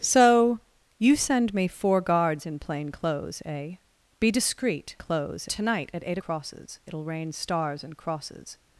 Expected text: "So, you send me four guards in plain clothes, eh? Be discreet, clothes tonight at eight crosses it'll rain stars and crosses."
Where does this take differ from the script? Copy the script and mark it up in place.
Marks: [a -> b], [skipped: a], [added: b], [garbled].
"So, you send me four guards in plain clothes, eh? Be discreet, clothes tonight at eight crosses it'll rain stars and crosses."